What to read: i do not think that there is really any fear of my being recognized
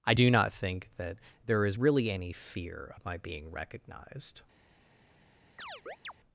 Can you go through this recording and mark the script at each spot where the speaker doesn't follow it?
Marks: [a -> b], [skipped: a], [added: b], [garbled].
i do not think that there is really any fear of my being recognized